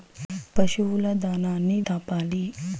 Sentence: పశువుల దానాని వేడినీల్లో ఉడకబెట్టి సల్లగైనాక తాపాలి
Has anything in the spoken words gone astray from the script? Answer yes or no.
yes